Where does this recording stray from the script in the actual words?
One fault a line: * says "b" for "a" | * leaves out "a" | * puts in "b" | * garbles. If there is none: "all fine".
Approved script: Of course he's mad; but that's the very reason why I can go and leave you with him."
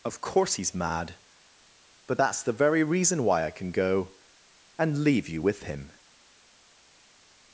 all fine